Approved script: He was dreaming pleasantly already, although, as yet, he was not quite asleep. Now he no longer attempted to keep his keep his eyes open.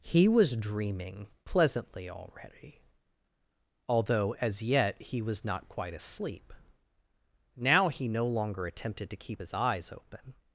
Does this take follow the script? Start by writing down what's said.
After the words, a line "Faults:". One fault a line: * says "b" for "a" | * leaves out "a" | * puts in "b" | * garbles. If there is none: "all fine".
He was dreaming pleasantly already, although, as yet, he was not quite asleep. Now he no longer attempted to keep his eyes open.
Faults:
* leaves out "keep his"